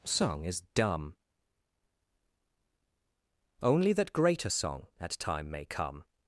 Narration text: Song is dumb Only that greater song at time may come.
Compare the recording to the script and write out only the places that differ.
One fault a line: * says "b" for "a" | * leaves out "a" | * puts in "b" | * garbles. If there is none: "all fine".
all fine